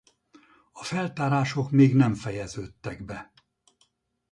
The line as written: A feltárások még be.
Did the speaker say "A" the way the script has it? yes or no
yes